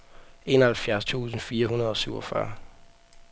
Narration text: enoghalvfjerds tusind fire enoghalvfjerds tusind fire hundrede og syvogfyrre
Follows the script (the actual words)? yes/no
no